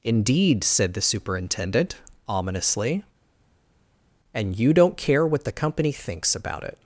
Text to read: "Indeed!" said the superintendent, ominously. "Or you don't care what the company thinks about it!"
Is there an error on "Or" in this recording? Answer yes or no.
yes